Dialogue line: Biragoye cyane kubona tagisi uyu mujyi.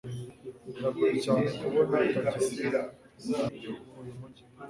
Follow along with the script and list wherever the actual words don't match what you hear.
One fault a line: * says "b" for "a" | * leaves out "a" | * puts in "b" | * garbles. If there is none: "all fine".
all fine